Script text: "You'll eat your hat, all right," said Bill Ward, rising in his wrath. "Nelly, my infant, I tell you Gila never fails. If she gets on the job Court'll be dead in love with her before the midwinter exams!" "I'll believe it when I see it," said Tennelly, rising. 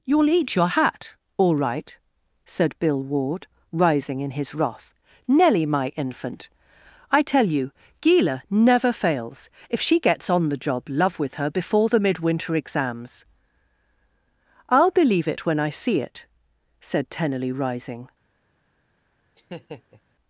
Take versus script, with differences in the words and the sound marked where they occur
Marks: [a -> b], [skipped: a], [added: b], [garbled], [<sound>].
"You'll eat your hat, all right," said Bill Ward, rising in his wrath. "Nelly, my infant, I tell you Gila never fails. If she gets on the job [skipped: Court'll be dead in] love with her before the midwinter exams!" "I'll believe it when I see it," said Tennelly, rising. [laugh]